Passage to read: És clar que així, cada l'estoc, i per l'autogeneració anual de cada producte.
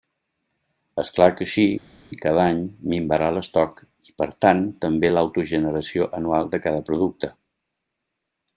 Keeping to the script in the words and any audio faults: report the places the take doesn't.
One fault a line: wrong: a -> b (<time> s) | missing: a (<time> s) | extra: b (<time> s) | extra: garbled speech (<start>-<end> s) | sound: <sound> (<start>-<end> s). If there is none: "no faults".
extra: any minvarà (2.5 s)
extra: tant també (4.4 s)